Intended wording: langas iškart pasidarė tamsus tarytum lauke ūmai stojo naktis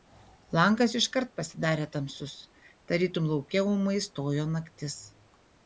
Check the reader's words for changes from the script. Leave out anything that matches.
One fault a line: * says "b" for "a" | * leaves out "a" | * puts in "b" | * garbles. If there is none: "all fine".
all fine